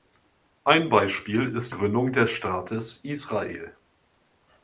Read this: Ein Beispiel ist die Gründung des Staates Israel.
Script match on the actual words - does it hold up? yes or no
no